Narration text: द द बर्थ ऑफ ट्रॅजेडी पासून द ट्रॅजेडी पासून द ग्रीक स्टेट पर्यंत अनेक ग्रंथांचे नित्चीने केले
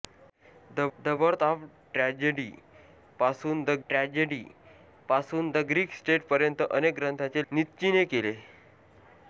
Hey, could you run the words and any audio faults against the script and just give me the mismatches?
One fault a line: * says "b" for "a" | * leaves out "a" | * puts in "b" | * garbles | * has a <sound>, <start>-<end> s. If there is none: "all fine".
all fine